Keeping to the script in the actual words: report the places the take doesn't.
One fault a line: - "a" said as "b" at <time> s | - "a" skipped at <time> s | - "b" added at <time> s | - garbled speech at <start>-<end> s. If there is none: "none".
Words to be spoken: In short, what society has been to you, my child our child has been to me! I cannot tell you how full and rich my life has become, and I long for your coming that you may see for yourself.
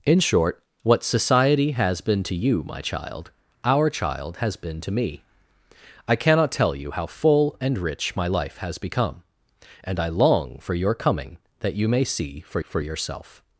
- "for" added at 12.6 s